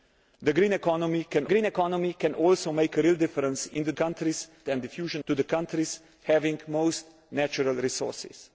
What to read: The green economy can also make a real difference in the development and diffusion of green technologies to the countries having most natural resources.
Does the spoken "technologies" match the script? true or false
false